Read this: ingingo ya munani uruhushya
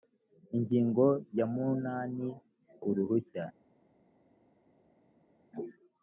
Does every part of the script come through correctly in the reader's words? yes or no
yes